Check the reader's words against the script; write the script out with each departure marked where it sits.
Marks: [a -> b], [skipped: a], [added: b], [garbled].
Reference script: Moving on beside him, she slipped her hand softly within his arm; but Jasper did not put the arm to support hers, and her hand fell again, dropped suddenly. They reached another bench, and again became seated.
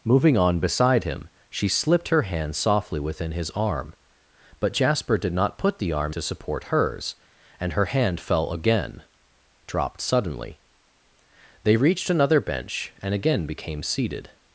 Moving on beside him, she slipped her hand softly within his arm; but Jasper did not put the arm to support hers, and her hand fell again, dropped suddenly. They reached another bench, and again became seated.